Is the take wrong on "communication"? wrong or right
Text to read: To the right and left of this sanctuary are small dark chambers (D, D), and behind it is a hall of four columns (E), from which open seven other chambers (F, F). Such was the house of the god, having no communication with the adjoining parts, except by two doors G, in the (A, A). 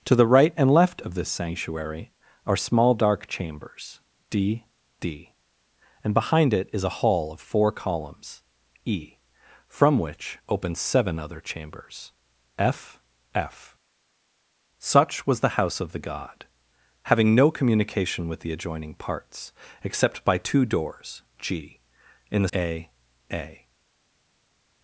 right